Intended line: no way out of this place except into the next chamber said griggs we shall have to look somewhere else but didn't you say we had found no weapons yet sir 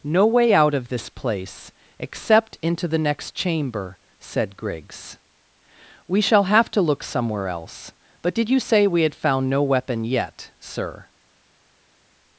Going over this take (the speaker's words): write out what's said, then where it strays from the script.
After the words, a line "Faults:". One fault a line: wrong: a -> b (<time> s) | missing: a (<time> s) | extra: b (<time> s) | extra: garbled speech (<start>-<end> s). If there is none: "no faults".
no way out of this place except into the next chamber said griggs we shall have to look somewhere else but did you say we had found no weapon yet sir
Faults:
wrong: didn't -> did (8.3 s)
wrong: weapons -> weapon (9.6 s)